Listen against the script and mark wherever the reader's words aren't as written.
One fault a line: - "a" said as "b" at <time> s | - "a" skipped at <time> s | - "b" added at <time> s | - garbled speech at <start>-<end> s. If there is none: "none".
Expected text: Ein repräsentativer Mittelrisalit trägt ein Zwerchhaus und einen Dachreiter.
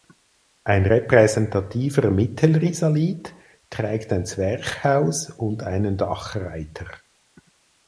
none